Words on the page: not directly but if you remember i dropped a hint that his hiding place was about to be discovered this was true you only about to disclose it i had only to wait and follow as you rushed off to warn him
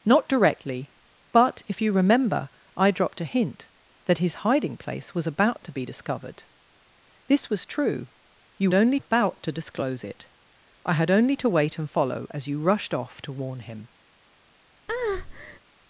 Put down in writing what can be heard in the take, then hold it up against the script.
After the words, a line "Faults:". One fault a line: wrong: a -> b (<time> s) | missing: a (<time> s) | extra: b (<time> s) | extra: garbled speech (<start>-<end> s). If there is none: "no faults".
not directly but if you remember i dropped a hint that his hiding place was about to be discovered this was true you only about to disclose it i had only to wait and follow as you rushed off to warn him
Faults:
no faults